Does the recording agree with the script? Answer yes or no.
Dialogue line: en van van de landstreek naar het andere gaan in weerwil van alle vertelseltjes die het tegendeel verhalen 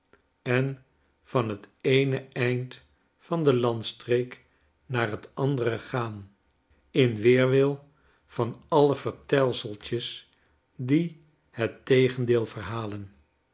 no